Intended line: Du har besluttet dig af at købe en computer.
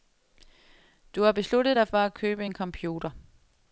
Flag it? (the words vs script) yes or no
yes